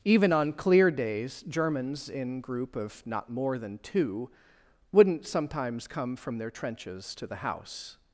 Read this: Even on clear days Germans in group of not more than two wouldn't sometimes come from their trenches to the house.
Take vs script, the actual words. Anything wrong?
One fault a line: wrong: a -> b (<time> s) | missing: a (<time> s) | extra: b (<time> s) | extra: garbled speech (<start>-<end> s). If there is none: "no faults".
no faults